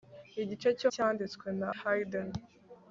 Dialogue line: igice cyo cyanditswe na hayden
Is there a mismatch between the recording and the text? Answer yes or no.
no